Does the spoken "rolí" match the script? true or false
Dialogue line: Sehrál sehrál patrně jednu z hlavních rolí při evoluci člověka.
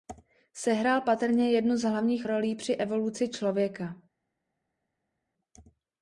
true